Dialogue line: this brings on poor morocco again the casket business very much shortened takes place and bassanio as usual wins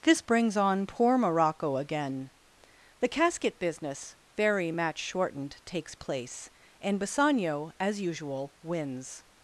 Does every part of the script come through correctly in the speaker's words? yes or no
no